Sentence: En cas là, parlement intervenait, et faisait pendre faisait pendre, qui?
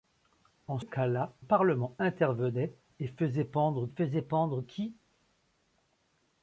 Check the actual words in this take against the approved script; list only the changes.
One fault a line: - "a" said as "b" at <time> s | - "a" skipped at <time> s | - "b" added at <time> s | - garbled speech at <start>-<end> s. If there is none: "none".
none